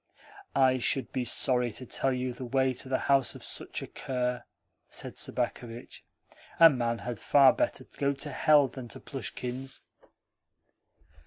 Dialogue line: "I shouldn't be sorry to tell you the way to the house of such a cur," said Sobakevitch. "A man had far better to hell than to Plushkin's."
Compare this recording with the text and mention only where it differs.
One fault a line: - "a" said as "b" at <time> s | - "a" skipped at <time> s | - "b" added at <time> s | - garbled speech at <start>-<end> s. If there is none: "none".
- "shouldn't" said as "should" at 0.8 s
- "go" added at 8.0 s